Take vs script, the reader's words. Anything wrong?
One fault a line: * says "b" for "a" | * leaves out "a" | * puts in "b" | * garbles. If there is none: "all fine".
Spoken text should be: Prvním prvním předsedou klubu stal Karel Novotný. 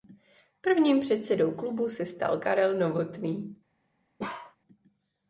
* leaves out "prvním"
* puts in "se"